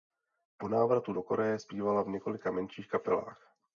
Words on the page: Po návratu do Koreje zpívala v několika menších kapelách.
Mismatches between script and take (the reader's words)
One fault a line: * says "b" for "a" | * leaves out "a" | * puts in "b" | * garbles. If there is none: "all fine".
all fine